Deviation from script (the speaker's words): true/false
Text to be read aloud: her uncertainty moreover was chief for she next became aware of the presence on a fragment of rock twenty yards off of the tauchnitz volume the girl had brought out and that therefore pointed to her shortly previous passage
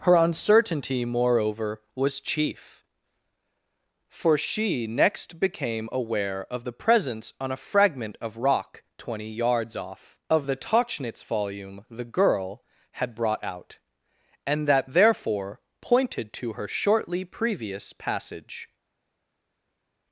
false